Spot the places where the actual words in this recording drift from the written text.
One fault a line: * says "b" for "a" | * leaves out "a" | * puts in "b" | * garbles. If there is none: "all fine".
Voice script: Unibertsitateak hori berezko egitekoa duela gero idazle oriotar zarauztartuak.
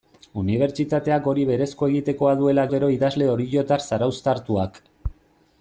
all fine